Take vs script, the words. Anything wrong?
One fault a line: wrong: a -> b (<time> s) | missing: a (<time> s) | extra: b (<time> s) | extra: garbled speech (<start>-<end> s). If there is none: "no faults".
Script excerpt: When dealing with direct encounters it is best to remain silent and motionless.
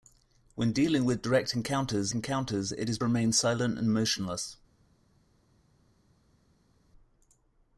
extra: encounters (2.1 s)
missing: best (3.0 s)